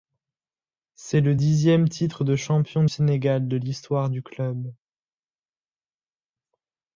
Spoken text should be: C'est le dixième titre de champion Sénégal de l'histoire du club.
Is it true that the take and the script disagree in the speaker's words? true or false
false